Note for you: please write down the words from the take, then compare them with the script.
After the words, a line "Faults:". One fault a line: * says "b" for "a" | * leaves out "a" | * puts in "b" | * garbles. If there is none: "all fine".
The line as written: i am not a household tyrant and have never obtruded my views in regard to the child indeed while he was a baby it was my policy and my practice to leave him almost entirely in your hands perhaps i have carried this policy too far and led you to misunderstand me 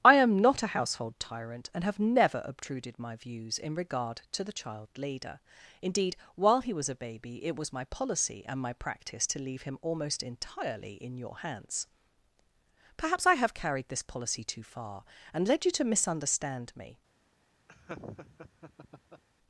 i am not a household tyrant and have never obtruded my views in regard to the child leader indeed while he was a baby it was my policy and my practice to leave him almost entirely in your hands perhaps i have carried this policy too far and led you to misunderstand me
Faults:
* puts in "leader"